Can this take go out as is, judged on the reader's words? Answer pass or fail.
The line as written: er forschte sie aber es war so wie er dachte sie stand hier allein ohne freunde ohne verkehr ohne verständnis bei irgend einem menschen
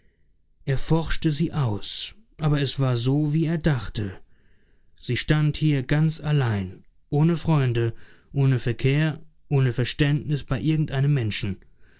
fail